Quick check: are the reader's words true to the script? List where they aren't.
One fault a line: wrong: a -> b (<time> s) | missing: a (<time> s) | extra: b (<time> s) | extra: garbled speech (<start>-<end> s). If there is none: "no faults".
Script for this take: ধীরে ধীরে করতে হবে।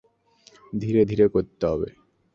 no faults